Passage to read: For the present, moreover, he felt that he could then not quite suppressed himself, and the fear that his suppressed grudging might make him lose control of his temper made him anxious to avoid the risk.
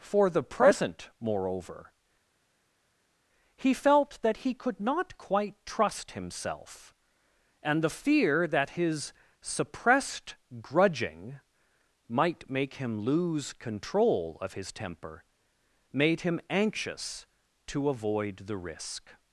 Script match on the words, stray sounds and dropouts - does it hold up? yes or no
no